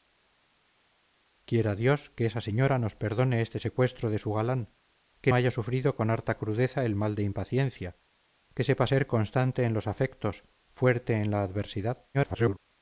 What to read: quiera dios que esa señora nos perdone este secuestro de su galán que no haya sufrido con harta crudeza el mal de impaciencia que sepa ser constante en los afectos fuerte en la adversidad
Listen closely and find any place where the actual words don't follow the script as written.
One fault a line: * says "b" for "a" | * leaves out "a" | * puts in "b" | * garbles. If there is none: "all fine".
* leaves out "no"
* garbles